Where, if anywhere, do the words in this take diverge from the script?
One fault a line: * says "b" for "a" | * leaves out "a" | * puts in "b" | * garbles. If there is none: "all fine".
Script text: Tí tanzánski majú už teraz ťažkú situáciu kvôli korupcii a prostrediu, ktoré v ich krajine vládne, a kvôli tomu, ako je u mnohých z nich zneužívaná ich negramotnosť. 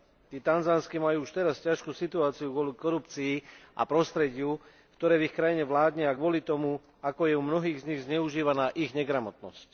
all fine